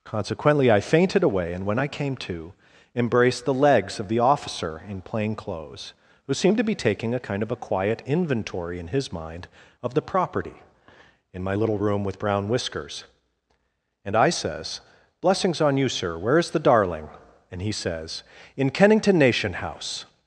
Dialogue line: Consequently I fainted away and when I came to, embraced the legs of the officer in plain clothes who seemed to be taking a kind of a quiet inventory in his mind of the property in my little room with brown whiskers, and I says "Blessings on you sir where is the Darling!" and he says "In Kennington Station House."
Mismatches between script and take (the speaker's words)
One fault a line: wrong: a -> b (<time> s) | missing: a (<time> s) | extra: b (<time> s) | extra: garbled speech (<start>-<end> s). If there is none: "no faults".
wrong: Station -> Nation (19.2 s)